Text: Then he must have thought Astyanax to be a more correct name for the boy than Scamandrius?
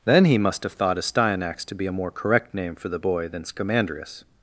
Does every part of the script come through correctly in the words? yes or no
yes